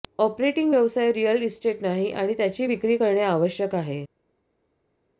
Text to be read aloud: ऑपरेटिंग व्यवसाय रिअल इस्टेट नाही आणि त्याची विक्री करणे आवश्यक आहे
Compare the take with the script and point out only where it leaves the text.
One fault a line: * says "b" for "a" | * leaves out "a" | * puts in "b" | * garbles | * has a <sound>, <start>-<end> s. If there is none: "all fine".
all fine